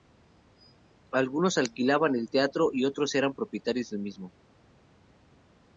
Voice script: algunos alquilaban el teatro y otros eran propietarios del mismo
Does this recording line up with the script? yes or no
yes